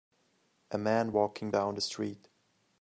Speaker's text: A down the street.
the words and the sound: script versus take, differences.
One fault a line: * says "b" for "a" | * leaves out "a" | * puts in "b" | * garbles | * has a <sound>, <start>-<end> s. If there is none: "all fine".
* puts in "man walking"